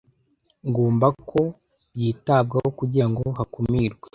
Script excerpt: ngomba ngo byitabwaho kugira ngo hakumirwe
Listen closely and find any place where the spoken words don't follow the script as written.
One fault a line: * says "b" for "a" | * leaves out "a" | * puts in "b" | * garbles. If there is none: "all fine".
* says "ko" for "ngo"